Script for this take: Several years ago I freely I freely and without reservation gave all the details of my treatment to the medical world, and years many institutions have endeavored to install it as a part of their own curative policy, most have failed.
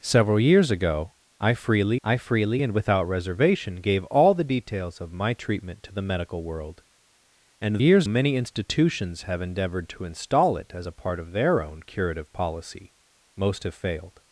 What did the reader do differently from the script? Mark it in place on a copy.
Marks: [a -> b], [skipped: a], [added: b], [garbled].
Several years ago I freely I freely and without reservation gave all the details of my treatment to the medical world, and years many institutions have endeavored to install it as a part of their own curative policy, most have failed.